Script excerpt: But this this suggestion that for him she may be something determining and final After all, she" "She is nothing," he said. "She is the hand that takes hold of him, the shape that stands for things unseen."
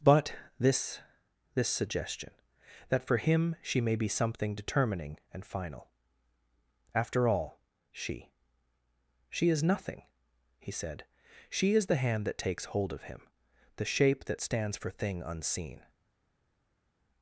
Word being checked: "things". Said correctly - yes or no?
no